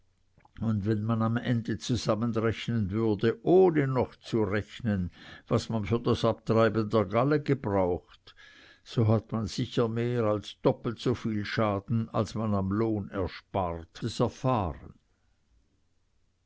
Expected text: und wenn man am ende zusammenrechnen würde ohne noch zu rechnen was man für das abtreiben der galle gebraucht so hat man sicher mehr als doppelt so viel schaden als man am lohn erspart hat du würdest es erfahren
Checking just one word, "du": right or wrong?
wrong